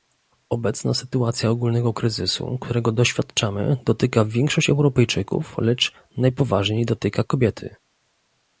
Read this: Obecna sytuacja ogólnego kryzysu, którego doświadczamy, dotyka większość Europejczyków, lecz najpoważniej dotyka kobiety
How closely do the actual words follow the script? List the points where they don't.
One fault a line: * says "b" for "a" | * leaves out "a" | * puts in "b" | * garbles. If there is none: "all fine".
all fine